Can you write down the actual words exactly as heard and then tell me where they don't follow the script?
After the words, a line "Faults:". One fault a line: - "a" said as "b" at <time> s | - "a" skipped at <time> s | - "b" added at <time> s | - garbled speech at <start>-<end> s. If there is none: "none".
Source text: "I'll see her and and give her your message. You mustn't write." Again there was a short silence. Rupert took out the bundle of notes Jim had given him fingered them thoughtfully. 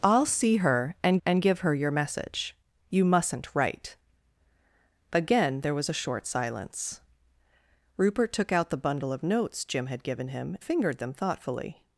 "I'll see her and and give her your message. You mustn't write." Again there was a short silence. Rupert took out the bundle of notes Jim had given him fingered them thoughtfully.
Faults:
none